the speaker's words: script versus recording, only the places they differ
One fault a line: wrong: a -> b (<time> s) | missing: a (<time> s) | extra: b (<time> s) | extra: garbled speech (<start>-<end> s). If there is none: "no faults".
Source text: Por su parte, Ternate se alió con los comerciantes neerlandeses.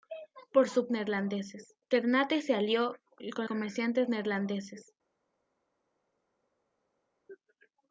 wrong: parte -> neerlandeses (0.9 s)
missing: los (3.5 s)